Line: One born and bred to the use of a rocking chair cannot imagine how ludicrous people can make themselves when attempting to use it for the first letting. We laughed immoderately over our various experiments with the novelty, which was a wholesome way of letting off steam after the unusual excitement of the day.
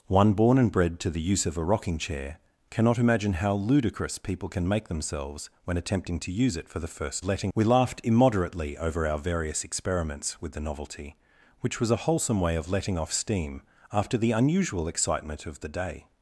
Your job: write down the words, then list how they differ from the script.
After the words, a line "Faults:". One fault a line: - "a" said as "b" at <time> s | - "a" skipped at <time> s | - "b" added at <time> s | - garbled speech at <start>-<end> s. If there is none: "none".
One born and bred to the use of a rocking chair cannot imagine how ludicrous people can make themselves when attempting to use it for the first letting. We laughed immoderately over our various experiments with the novelty, which was a wholesome way of letting off steam after the unusual excitement of the day.
Faults:
none